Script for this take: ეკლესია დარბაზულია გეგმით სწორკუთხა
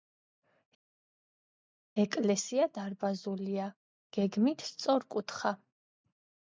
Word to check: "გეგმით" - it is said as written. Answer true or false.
true